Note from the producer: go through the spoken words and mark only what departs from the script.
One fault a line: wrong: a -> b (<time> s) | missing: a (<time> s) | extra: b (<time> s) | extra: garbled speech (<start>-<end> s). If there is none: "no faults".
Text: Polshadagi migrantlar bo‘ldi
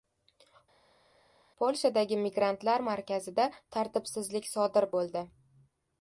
extra: markazida tartibsizlik sodir (2.9 s)